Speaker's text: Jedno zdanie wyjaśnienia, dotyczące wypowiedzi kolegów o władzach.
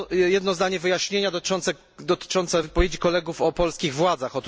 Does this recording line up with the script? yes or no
no